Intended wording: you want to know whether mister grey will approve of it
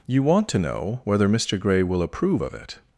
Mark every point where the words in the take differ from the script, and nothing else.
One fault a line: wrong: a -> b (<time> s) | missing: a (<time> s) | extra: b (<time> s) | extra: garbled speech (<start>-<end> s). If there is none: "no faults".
no faults